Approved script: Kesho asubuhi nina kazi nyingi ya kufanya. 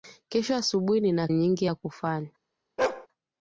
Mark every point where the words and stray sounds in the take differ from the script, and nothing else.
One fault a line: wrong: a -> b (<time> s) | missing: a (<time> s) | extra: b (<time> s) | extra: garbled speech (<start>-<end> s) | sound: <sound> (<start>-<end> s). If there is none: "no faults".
missing: kazi (1.3 s)
sound: bark (2.8-3.1 s)